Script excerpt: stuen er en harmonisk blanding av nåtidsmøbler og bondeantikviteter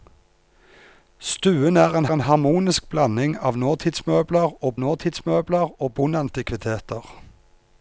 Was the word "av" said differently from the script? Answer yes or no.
no